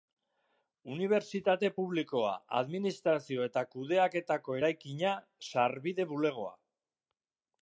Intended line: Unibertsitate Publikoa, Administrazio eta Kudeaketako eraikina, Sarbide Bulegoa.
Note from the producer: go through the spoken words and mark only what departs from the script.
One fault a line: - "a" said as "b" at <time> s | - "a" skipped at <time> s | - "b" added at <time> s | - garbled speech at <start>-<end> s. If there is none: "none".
none